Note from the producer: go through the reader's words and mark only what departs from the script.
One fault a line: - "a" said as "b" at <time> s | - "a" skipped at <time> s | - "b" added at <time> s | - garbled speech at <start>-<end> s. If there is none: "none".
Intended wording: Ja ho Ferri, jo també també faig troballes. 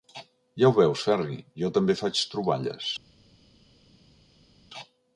- "veus" added at 0.8 s
- "també" skipped at 2.0 s